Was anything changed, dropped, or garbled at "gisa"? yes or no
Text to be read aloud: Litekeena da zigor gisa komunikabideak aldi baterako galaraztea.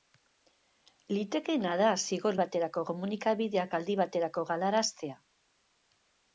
yes